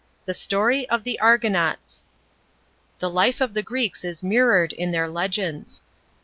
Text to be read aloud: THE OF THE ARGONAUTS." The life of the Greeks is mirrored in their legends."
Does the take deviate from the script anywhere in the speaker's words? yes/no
yes